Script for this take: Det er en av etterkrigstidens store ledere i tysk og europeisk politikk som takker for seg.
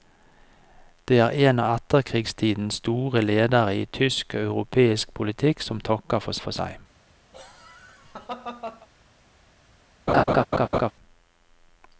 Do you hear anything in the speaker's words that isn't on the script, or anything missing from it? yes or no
yes